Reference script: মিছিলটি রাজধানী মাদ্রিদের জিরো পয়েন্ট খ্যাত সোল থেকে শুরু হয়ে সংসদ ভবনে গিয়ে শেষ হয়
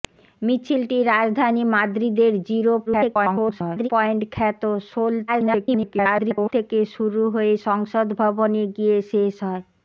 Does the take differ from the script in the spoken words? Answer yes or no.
yes